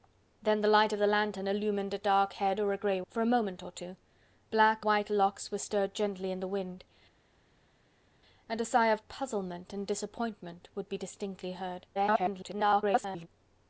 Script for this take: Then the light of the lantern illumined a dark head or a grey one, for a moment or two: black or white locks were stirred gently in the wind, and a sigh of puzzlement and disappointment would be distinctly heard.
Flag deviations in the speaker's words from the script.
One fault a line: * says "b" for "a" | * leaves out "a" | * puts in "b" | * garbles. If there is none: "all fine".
* leaves out "one"
* leaves out "or"
* garbles